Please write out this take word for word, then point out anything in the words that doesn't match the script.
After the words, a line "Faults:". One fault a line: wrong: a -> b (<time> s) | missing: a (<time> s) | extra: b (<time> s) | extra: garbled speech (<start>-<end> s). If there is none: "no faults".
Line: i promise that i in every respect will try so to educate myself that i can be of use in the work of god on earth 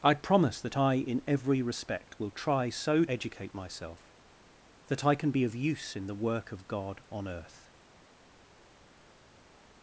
i promise that i in every respect will try so educate myself that i can be of use in the work of god on earth
Faults:
missing: to (3.0 s)